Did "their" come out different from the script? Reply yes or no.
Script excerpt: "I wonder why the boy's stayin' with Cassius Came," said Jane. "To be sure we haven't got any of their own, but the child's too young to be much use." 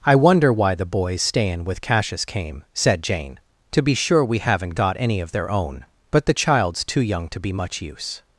no